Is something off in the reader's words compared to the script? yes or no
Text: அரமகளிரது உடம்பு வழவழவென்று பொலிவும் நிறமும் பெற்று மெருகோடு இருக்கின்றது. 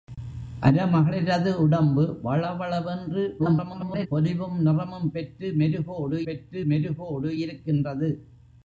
yes